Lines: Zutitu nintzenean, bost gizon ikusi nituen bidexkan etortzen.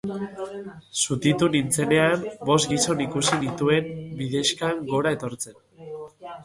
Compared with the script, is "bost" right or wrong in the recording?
right